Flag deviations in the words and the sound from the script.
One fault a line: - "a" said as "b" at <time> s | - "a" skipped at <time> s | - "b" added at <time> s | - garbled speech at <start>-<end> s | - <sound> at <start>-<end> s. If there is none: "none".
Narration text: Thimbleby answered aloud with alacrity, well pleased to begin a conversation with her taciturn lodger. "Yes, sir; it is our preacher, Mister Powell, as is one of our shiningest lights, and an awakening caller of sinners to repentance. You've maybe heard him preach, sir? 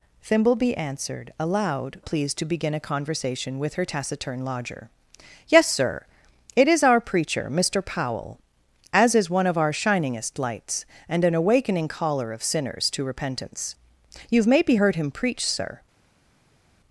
- "with alacrity well" skipped at 2.0 s